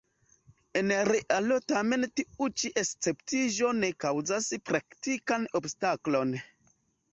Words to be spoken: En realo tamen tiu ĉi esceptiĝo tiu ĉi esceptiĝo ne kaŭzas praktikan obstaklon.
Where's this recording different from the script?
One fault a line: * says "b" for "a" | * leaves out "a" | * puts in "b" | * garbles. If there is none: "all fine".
* leaves out "tiu ĉi esceptiĝo"